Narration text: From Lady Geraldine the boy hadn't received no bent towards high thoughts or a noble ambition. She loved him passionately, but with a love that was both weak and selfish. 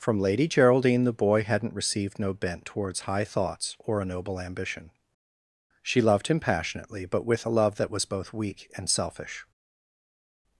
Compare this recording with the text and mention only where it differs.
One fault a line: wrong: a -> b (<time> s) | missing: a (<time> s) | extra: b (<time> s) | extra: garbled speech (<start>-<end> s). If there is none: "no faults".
no faults